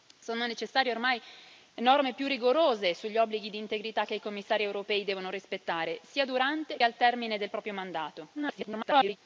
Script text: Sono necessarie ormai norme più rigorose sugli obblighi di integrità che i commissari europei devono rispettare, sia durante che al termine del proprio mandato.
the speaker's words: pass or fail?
fail